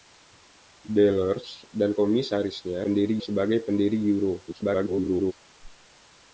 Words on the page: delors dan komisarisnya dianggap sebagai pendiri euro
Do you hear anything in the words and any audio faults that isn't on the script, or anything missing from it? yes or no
yes